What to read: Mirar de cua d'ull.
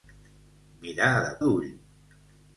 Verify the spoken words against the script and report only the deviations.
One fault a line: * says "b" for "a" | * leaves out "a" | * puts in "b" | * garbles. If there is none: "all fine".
* leaves out "cua"